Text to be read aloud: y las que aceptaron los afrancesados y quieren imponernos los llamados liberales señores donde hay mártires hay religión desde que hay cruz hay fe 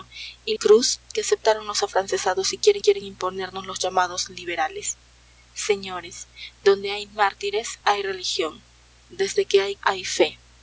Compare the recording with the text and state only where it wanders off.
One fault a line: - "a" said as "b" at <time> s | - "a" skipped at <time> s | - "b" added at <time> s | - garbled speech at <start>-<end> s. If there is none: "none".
- "las" said as "cruz" at 0.5 s
- "quieren" added at 2.8 s
- "cruz" skipped at 9.8 s